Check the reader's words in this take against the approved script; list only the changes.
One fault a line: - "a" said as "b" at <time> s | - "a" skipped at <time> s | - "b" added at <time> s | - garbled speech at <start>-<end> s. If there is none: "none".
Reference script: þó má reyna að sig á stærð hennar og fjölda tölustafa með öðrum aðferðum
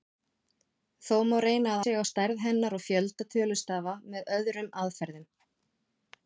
none